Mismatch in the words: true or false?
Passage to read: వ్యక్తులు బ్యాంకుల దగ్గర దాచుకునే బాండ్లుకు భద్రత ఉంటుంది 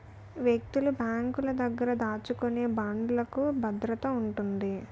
false